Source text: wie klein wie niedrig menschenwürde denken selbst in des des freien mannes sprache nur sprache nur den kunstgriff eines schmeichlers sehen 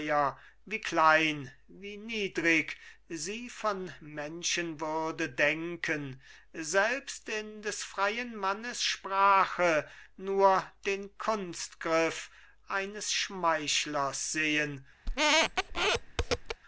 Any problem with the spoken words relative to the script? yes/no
yes